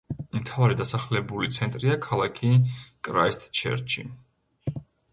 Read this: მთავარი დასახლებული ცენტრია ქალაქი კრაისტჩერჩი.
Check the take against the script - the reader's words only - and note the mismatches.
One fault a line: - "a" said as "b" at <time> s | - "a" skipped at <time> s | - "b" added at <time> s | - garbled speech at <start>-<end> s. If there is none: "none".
none